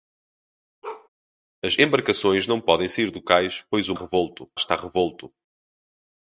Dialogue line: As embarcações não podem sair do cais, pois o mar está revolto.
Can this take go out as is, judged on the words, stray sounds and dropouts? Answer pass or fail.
fail